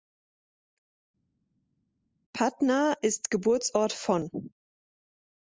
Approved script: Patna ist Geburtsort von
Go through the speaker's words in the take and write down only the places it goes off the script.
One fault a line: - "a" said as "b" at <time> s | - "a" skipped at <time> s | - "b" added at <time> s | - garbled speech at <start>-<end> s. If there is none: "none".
none